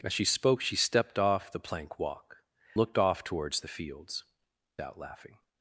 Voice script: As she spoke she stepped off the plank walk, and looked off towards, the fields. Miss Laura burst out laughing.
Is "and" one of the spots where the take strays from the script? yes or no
yes